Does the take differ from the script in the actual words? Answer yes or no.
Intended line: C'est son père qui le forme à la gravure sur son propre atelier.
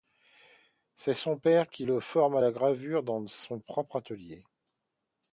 yes